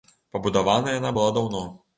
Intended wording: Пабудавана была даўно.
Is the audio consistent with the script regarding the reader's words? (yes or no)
no